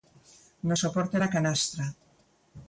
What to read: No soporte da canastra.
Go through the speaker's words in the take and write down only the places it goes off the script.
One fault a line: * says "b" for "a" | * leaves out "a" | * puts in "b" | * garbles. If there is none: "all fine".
all fine